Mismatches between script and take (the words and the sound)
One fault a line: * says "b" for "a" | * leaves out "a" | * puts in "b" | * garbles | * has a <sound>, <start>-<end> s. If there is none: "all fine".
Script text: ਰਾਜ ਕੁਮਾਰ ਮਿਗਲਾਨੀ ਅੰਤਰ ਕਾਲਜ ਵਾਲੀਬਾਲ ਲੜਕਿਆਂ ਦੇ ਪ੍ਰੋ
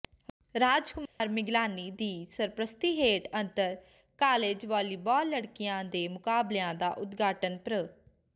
* has a dropout, 1.1-1.2 s
* puts in "ਦੀ ਸਰਪ੍ਰਸਤੀ ਹੇਠ"
* puts in "ਮੁਕਾਬਲਿਆਂ ਦਾ ਉਦਘਾਟਨ"